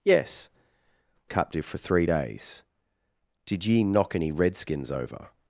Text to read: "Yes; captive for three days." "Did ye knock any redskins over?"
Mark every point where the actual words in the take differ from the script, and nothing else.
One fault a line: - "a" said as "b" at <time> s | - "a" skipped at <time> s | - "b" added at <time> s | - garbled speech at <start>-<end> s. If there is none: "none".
none